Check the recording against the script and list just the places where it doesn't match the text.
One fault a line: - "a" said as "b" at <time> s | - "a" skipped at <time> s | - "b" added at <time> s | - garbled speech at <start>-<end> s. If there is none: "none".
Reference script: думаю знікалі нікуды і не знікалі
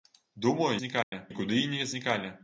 none